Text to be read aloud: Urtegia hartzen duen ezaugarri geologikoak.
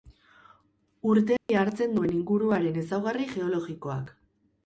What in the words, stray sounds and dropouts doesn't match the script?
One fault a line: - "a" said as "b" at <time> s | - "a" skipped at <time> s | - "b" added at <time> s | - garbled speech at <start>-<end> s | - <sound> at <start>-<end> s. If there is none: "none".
- dropout at 1.4-1.5 s
- "inguruaren" added at 2.2 s